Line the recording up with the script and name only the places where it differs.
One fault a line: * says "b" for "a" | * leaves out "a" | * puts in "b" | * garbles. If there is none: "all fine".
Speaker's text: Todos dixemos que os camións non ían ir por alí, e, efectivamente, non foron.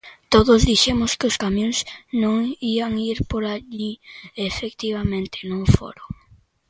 all fine